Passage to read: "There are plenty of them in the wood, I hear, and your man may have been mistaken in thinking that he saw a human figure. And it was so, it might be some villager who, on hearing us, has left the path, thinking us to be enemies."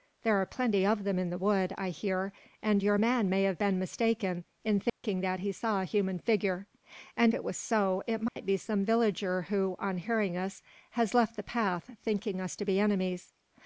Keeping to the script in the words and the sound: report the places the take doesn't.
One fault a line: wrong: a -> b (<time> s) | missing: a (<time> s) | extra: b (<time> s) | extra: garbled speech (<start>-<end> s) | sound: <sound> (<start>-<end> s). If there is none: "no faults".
sound: dropout (4.9-5.0 s)
sound: dropout (8.3-8.4 s)